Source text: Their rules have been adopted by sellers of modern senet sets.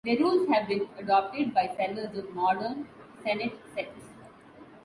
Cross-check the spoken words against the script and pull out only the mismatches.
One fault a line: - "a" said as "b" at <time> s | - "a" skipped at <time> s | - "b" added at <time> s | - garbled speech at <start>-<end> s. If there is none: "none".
none